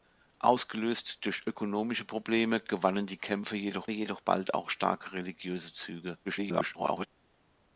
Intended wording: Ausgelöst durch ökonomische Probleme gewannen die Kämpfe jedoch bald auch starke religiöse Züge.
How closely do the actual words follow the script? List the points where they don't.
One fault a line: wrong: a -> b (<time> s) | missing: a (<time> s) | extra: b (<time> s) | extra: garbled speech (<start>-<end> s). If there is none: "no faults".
extra: jedoch (3.9 s)
extra: garbled speech (6.3-7.1 s)